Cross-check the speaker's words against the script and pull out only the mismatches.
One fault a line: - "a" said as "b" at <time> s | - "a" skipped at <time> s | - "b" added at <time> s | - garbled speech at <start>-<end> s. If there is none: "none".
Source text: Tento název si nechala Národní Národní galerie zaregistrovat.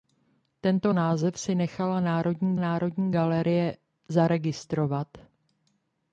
none